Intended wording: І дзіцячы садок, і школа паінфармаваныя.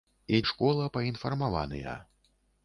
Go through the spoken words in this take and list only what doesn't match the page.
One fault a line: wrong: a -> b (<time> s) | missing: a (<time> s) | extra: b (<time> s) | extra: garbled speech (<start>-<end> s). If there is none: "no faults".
missing: дзіцячы садок (0.4 s)